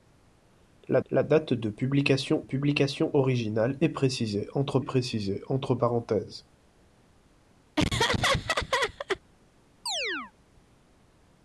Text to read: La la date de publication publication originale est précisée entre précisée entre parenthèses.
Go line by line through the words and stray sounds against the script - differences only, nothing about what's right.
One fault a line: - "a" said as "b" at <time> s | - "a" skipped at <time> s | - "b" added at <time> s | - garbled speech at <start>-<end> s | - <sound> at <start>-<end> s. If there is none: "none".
- laugh at 7.8-9.2 s
- chirp at 9.9-10.3 s